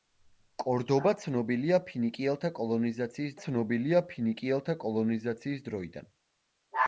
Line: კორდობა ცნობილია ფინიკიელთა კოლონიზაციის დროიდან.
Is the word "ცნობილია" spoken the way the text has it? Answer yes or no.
yes